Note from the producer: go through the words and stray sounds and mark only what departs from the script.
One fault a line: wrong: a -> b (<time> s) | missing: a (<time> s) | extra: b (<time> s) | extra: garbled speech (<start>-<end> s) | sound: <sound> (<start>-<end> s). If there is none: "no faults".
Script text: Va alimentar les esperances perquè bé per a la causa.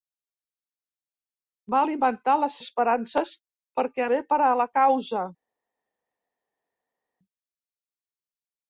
no faults